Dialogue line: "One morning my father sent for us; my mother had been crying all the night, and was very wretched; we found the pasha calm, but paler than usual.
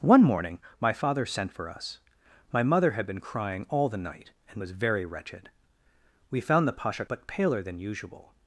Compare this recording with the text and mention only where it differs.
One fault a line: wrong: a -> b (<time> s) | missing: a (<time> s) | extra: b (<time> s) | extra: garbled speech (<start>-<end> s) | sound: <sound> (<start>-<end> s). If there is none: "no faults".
missing: calm (7.0 s)